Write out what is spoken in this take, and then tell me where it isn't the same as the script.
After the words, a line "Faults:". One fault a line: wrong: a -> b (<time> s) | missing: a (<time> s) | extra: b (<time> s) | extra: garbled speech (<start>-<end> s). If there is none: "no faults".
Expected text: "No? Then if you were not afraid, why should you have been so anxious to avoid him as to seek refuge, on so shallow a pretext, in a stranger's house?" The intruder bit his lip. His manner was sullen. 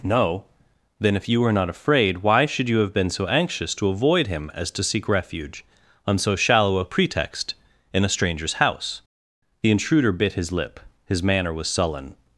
"No? Then if you were not afraid, why should you have been so anxious to avoid him as to seek refuge, on so shallow a pretext, in a stranger's house?" The intruder bit his lip. His manner was sullen.
Faults:
no faults